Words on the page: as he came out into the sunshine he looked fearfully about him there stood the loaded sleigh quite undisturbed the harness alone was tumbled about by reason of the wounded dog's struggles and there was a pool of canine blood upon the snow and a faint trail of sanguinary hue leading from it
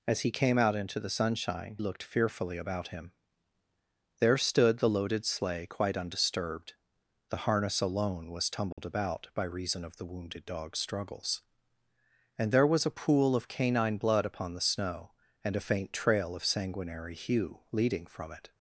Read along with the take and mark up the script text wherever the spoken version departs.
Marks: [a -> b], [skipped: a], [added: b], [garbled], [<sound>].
as he came out into the sunshine [skipped: he] looked fearfully about him there stood the loaded sleigh quite undisturbed the harness alone was tumbled [dropout] about by reason of the wounded dog's struggles and there was a pool of canine blood upon the snow and a faint trail of sanguinary hue leading from it